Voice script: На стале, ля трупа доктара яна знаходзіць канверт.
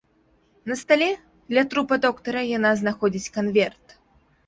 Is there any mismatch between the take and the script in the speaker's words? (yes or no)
no